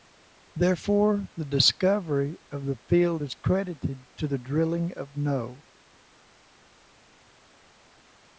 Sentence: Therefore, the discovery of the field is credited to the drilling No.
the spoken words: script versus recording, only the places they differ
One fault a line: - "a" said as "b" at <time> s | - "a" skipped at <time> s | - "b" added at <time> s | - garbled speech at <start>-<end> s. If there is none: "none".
- "of" added at 4.9 s